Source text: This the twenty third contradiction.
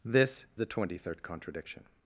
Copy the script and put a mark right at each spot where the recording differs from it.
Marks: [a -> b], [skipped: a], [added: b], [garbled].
This the twenty third contradiction.